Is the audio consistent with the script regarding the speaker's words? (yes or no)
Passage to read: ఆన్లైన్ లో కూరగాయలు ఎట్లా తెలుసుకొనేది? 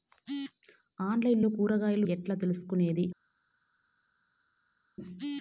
yes